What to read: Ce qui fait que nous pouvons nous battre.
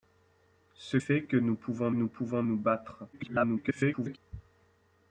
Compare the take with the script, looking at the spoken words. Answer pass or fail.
fail